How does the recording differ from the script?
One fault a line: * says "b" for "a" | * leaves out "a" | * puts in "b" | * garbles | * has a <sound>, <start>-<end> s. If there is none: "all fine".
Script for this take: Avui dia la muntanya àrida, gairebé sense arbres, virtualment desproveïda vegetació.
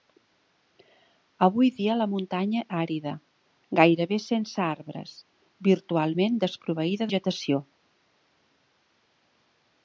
all fine